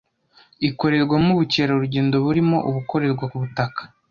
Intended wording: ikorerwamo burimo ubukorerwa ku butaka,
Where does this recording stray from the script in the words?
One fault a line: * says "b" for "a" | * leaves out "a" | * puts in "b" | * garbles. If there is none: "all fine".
* puts in "ubukerarugendo"